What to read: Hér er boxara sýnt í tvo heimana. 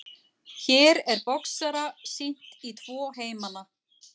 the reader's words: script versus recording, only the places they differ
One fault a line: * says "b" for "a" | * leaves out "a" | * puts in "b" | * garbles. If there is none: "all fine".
all fine